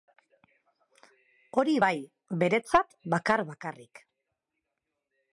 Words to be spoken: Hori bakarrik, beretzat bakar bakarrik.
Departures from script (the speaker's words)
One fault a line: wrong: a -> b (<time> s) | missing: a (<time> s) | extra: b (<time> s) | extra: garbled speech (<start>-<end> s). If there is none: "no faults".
wrong: bakarrik -> bai (1.8 s)